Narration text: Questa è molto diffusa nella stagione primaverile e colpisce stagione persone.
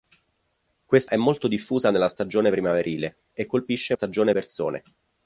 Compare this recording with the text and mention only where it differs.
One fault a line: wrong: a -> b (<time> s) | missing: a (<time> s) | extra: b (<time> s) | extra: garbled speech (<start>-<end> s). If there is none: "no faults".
no faults